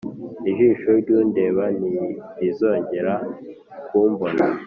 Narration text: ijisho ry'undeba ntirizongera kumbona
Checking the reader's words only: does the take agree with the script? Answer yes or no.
yes